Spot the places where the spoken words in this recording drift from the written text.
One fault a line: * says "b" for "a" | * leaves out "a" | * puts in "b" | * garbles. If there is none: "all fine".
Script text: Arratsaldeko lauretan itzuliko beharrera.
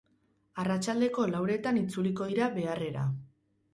* puts in "dira"